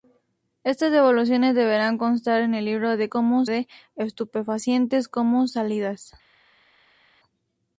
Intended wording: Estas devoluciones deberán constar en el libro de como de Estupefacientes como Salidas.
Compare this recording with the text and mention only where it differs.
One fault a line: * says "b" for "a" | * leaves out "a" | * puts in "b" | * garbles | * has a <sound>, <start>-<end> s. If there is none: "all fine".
all fine